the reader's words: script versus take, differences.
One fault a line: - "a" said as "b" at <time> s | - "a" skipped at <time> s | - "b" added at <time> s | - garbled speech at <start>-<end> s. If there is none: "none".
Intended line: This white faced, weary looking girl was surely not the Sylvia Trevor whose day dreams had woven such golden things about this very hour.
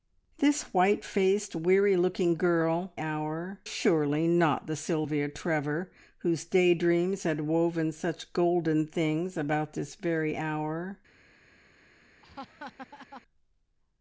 - "was" said as "hour" at 3.0 s